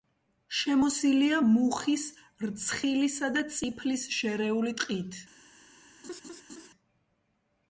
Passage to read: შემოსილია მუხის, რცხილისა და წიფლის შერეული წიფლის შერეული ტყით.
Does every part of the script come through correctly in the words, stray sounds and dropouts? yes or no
no